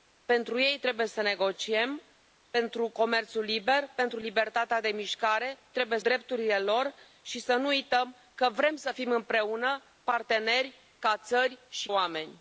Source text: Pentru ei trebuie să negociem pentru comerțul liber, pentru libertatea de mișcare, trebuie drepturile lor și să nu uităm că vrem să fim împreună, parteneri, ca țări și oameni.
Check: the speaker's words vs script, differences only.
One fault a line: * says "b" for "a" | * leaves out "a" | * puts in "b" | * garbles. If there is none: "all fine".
all fine